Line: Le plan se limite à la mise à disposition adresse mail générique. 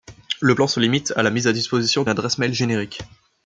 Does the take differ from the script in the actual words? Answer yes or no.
no